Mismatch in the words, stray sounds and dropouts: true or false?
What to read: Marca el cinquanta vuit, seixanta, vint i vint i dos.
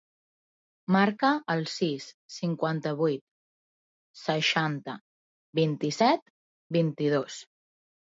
true